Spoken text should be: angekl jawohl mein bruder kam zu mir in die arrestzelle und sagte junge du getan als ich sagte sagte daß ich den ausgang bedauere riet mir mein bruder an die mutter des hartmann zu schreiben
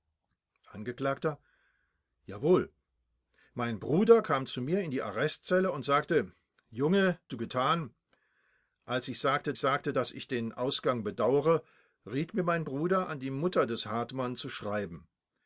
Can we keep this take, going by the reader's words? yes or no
yes